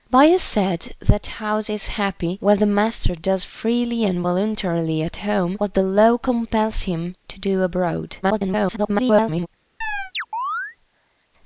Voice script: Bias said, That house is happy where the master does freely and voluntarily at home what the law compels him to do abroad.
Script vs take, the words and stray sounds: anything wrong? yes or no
yes